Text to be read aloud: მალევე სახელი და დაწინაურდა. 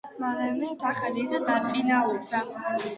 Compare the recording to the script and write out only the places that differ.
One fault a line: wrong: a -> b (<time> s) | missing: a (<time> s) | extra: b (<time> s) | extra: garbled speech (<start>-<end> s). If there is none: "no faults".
no faults